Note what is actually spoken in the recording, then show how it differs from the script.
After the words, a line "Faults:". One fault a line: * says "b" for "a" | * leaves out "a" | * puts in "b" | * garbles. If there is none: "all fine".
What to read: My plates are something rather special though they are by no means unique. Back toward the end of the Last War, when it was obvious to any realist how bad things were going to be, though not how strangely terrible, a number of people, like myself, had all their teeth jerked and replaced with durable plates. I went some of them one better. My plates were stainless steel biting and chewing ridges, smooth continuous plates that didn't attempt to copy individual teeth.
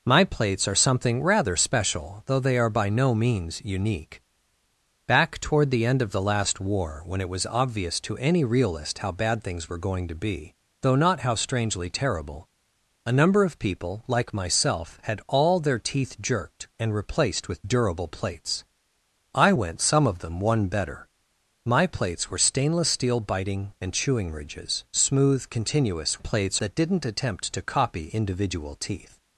My plates are something rather special though they are by no means unique. Back toward the end of the Last War, when it was obvious to any realist how bad things were going to be, though not how strangely terrible, a number of people, like myself, had all their teeth jerked and replaced with durable plates. I went some of them one better. My plates were stainless steel biting and chewing ridges, smooth continuous plates that didn't attempt to copy individual teeth.
Faults:
all fine